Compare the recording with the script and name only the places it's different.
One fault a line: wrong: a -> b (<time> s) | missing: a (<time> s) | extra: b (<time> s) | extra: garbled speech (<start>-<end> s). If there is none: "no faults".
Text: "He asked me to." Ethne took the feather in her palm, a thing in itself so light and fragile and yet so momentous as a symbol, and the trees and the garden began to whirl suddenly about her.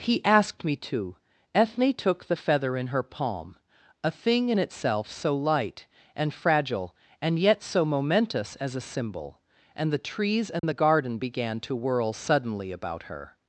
no faults